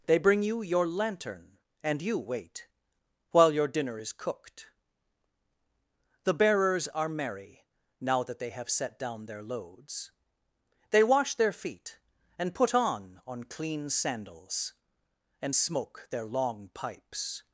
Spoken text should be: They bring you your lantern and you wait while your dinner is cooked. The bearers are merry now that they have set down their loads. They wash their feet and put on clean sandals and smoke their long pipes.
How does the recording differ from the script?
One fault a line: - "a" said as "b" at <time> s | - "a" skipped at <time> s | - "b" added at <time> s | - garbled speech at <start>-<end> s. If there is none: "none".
- "on" added at 13.3 s